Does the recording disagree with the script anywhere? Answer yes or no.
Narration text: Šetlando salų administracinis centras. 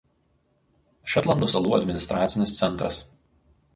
no